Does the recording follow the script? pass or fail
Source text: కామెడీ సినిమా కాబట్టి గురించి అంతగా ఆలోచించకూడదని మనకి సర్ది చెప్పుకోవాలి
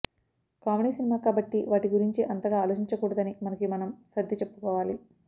fail